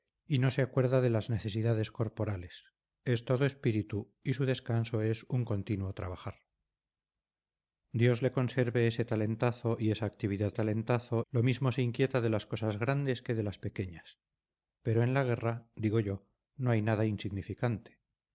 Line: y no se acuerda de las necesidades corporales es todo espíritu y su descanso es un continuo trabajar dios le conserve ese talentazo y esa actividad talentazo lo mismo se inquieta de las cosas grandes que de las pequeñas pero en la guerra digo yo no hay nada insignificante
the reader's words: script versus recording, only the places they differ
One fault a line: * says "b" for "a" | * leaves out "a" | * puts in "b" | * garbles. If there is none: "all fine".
all fine